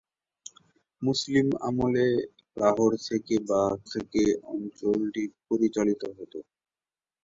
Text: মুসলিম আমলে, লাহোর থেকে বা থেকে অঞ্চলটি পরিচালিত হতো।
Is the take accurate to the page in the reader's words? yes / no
yes